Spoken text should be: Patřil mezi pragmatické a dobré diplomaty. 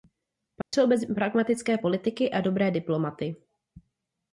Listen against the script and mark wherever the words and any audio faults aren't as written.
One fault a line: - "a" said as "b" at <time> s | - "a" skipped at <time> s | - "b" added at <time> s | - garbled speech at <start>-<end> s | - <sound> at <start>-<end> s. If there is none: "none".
- dropout at 0.6-0.7 s
- "politiky" added at 1.7 s